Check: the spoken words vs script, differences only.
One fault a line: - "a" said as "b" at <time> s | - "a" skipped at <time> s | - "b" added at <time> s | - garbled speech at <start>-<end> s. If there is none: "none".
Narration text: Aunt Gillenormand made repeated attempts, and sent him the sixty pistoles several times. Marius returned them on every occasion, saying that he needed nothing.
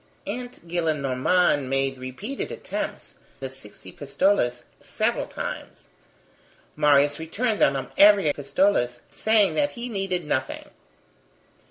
- "and sent him" skipped at 3.1 s
- "occasion" said as "pistoles" at 8.3 s